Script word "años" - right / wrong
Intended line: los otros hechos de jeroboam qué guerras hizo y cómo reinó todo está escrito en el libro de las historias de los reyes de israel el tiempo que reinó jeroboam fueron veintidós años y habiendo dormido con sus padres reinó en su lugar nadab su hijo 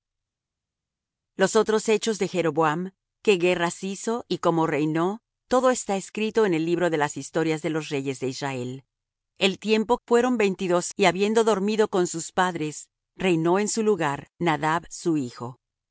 wrong